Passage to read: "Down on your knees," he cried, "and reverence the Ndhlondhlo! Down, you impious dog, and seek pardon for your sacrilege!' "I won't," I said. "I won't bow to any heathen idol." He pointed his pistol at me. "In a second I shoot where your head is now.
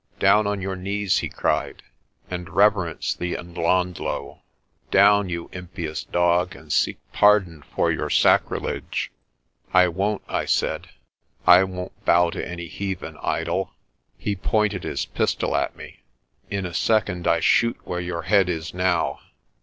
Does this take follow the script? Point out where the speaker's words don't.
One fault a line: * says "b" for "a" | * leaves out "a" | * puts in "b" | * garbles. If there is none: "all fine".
all fine